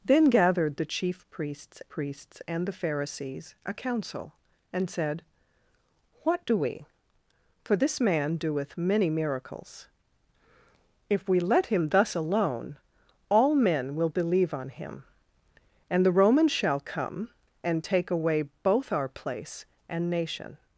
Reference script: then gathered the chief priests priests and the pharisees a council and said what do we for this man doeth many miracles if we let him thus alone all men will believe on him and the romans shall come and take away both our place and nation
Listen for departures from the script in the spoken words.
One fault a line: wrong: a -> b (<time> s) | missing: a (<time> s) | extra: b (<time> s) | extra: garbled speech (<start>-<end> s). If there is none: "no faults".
no faults